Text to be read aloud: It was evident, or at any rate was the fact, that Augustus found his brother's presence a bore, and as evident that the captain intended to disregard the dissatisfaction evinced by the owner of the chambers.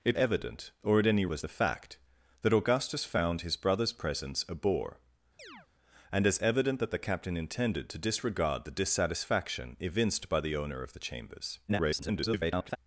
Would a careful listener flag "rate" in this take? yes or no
yes